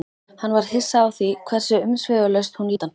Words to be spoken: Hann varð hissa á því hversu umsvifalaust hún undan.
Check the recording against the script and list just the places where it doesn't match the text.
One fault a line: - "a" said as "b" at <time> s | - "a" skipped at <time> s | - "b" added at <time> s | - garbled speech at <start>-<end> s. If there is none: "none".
none